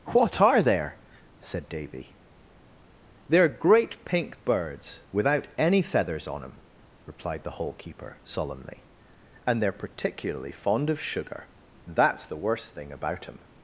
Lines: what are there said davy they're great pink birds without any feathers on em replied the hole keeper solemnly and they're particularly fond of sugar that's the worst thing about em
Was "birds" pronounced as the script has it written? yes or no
yes